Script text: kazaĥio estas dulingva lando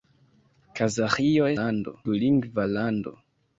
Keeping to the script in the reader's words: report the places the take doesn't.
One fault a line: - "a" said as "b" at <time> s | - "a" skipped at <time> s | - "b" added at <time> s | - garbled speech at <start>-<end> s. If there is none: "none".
- "estas" said as "lando" at 1.6 s